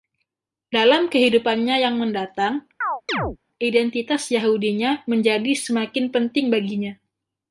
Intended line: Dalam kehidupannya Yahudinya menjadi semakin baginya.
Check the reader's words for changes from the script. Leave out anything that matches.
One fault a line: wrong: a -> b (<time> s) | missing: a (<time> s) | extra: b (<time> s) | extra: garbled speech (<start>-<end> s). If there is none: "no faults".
extra: yang mendatang identitas (1.9 s)
extra: penting (6.1 s)